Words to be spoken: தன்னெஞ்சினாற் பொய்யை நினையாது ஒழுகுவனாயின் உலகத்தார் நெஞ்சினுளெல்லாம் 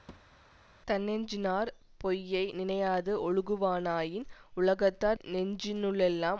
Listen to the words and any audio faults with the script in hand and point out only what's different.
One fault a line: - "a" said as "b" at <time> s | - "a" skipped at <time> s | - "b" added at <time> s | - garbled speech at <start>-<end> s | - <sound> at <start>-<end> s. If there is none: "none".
- thud at 0.1-0.4 s